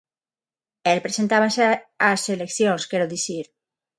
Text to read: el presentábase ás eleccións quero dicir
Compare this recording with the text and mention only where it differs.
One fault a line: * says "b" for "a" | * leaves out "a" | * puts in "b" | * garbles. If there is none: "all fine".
all fine